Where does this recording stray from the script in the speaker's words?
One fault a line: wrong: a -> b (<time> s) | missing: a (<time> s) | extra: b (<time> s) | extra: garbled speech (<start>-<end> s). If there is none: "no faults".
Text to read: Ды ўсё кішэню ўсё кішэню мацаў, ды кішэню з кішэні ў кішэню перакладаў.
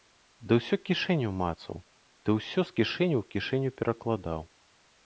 missing: ўсё кішэню (1.3 s)
wrong: кішэню -> ўсё (2.4 s)